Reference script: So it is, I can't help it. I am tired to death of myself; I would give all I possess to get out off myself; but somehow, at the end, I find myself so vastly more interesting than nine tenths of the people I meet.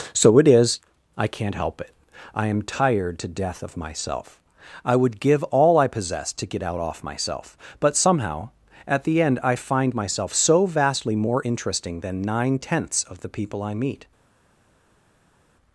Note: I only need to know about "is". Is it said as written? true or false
true